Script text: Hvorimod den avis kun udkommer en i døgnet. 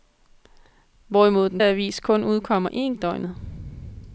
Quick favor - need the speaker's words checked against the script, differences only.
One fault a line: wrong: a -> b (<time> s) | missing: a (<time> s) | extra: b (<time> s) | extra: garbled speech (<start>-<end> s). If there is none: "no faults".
no faults